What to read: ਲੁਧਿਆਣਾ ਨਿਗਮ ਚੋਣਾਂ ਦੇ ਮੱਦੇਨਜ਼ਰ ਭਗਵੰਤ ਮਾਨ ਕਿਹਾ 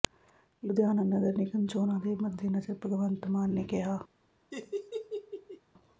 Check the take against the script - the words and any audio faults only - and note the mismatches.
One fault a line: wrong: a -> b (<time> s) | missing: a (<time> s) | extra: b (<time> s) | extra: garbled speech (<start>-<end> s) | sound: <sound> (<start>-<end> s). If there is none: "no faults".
extra: ਨਗਰ (1.0 s)
extra: ਨੇ (3.5 s)
sound: laugh (4.5-5.6 s)